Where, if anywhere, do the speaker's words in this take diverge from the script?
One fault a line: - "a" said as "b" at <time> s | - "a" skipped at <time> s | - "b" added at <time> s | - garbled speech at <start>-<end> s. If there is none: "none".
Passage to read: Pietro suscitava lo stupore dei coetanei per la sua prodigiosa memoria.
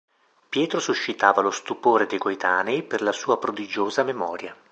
none